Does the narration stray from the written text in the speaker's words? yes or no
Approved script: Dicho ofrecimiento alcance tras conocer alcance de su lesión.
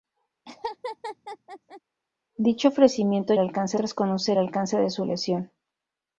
no